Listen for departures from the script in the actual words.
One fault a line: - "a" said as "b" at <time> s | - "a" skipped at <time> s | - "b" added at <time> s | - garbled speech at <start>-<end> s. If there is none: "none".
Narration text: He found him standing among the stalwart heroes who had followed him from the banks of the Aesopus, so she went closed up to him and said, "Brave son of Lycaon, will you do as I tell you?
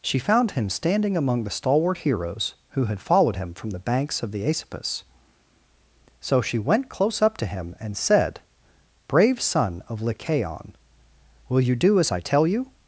- "He" said as "She" at 0.0 s
- "closed" said as "close" at 6.9 s